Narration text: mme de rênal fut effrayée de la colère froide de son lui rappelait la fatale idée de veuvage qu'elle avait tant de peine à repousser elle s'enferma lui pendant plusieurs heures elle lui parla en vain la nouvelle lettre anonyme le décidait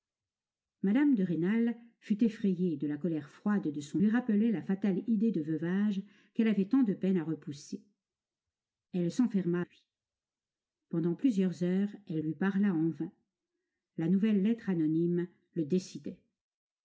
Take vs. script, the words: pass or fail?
pass